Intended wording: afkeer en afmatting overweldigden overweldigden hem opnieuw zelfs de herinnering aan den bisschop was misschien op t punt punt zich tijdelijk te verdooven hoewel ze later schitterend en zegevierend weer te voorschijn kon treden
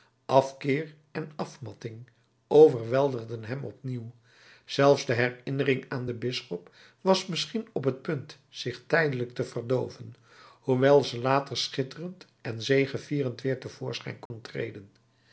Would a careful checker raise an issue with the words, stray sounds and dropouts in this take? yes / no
yes